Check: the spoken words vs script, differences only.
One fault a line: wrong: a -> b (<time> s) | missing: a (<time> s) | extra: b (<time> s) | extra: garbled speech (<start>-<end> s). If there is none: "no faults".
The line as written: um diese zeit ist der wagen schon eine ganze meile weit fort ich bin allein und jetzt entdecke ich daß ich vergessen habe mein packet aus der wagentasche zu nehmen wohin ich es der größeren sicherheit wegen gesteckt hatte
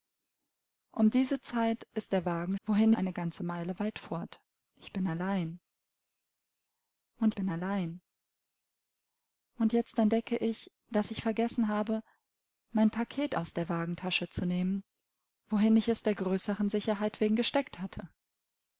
wrong: schon -> wohin (2.7 s)
extra: bin allein und (7.3 s)